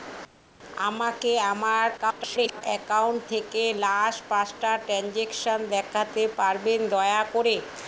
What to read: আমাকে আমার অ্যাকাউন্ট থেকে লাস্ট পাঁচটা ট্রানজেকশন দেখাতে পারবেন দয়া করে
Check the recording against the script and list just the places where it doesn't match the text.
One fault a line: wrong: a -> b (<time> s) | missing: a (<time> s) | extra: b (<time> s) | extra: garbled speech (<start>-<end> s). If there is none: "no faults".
extra: garbled speech (2.0-2.6 s)